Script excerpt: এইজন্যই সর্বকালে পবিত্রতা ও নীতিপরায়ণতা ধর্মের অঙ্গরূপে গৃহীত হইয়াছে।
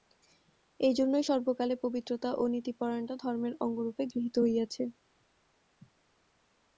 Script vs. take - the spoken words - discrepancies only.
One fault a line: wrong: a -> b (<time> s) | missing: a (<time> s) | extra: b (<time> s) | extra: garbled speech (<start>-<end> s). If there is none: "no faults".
no faults